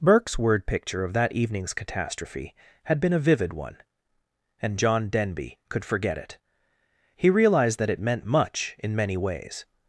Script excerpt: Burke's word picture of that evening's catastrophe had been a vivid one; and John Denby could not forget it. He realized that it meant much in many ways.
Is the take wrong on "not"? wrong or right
wrong